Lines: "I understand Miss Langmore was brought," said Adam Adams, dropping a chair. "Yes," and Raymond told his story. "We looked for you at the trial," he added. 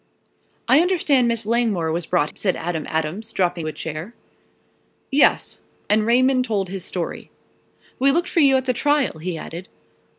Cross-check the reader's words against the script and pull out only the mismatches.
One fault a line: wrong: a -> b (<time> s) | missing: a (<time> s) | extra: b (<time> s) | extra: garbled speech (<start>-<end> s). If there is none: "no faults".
no faults